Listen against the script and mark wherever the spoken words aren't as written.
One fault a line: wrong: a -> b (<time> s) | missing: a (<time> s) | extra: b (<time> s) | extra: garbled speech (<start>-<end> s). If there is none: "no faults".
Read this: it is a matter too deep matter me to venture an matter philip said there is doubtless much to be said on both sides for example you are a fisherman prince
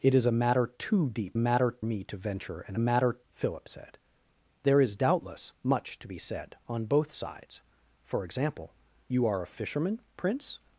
no faults